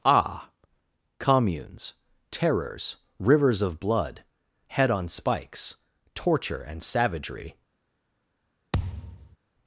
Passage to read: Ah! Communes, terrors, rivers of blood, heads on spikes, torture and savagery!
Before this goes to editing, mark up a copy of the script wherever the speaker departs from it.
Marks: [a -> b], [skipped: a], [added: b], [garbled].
Ah! Communes, terrors, rivers of blood, [heads -> head] on spikes, torture and savagery!